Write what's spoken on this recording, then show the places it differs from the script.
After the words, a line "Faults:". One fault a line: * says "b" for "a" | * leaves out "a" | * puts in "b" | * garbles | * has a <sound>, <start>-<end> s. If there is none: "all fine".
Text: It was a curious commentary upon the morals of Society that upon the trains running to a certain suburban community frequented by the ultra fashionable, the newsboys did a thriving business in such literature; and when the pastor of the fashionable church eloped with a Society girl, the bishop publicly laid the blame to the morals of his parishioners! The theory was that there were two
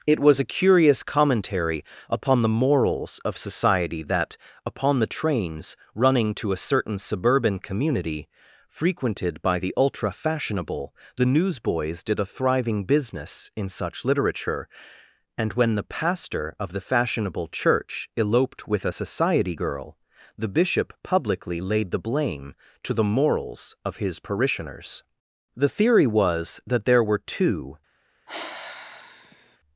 It was a curious commentary upon the morals of Society that upon the trains running to a certain suburban community frequented by the ultra fashionable, the newsboys did a thriving business in such literature; and when the pastor of the fashionable church eloped with a Society girl, the bishop publicly laid the blame to the morals of his parishioners! The theory was that there were two
Faults:
* has a sigh, 28.3-29.6 s